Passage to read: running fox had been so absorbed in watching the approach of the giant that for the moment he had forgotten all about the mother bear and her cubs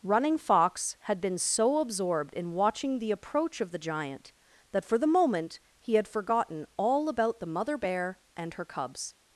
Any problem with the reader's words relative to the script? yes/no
no